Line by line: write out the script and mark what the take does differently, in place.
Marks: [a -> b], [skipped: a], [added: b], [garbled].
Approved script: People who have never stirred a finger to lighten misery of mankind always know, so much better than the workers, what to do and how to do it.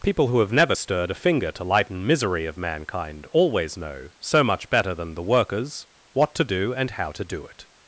People who have never stirred a finger to lighten misery of mankind always know, so much better than the workers, what to do and how to do it.